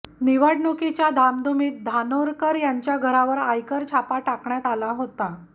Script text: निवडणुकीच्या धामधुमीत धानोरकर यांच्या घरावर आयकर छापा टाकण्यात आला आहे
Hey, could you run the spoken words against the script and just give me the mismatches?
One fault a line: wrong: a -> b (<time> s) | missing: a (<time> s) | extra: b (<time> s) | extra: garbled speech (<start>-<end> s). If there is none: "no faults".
wrong: आहे -> होता (4.9 s)